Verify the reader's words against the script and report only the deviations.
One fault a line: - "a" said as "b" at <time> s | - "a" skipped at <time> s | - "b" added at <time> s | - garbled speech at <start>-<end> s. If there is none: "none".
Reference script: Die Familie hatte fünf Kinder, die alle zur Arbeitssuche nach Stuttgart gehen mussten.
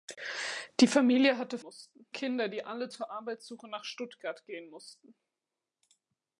- "fünf" said as "mussten" at 1.6 s